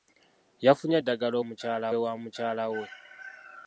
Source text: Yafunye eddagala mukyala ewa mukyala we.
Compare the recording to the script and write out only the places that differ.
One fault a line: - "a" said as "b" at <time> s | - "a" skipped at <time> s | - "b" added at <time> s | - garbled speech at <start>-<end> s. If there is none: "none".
none